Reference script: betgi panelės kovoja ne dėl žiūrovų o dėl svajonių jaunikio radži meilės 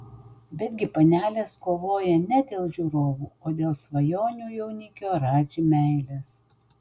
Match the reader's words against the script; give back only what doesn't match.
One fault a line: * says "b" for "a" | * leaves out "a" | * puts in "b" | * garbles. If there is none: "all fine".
all fine